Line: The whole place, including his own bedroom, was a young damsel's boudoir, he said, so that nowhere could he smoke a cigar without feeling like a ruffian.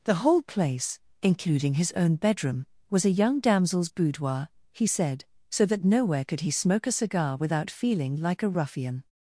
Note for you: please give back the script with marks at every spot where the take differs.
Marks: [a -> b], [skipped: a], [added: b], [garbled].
The whole place, including his own bedroom, was a young damsel's boudoir, he said, so that nowhere could he smoke a cigar without feeling like a ruffian.